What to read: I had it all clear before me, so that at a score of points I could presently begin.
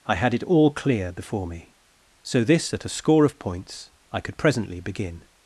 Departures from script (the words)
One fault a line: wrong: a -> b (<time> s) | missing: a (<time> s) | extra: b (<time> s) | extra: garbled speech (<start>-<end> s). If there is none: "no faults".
wrong: that -> this (2.4 s)